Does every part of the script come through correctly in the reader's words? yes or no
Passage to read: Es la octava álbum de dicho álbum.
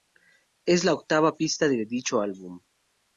no